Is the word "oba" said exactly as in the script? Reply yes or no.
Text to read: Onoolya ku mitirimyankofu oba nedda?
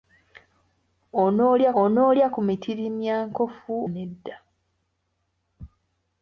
no